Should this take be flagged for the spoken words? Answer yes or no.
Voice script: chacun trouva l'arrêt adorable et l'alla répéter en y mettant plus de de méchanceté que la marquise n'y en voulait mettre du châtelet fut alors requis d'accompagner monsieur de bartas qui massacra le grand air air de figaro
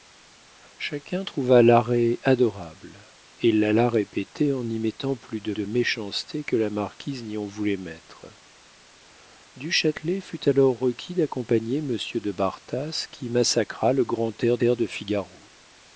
no